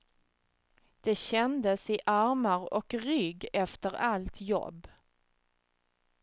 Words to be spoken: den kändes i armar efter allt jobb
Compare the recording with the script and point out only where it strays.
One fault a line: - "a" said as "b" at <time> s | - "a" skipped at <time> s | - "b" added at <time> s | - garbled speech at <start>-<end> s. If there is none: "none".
- "den" said as "det" at 1.0 s
- "och rygg" added at 2.7 s